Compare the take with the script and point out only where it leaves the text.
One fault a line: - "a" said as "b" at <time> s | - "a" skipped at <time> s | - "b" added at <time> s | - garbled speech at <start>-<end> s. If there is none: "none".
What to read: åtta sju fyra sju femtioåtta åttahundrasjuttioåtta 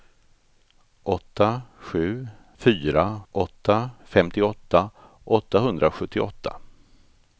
- "sju" said as "åtta" at 3.3 s